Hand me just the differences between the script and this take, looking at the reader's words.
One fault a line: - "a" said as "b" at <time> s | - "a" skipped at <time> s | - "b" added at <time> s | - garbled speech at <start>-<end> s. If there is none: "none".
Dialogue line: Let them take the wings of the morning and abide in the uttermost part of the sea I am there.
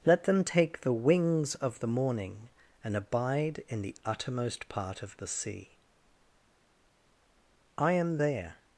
none